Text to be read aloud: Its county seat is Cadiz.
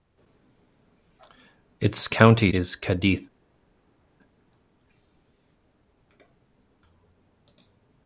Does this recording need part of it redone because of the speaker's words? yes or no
yes